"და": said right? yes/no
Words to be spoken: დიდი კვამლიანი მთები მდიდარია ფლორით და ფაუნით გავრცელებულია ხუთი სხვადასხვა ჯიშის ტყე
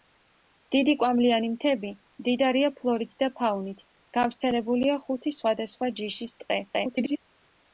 yes